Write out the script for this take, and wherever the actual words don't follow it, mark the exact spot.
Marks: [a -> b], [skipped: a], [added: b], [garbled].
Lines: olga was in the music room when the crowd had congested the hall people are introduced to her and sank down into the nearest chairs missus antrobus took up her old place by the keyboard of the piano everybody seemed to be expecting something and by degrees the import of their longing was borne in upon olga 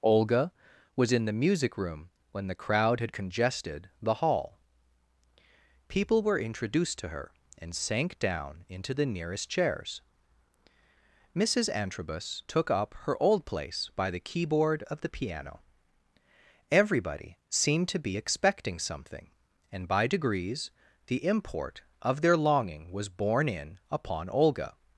olga was in the music room when the crowd had congested the hall people [are -> were] introduced to her and sank down into the nearest chairs missus antrobus took up her old place by the keyboard of the piano everybody seemed to be expecting something and by degrees the import of their longing was borne in upon olga